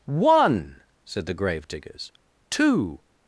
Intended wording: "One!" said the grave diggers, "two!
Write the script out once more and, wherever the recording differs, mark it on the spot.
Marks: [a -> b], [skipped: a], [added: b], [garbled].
"One!" said the grave diggers, "two!